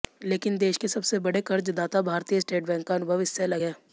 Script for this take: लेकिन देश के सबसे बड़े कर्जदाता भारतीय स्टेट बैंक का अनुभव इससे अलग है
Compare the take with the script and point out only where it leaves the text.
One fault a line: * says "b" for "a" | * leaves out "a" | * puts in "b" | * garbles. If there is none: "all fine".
all fine